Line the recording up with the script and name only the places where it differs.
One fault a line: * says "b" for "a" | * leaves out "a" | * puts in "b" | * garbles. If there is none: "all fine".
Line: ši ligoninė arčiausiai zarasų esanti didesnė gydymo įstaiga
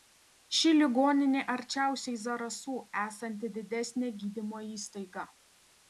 all fine